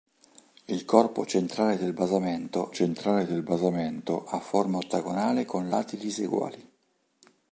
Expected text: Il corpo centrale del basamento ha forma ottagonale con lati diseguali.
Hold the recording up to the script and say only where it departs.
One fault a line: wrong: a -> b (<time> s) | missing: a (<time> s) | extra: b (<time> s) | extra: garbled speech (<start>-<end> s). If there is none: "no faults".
extra: centrale del basamento (2.7 s)